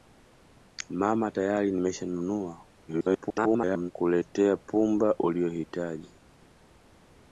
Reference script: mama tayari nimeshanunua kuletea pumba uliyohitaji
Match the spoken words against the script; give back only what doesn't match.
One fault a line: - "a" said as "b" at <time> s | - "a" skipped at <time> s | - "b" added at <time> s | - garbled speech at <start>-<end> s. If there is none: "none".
- garbled speech at 2.9-3.9 s